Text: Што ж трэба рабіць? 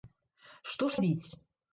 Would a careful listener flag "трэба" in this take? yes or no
yes